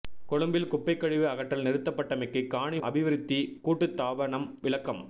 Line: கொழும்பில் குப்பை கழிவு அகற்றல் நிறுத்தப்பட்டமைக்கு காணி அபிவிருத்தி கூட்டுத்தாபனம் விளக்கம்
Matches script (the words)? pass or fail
pass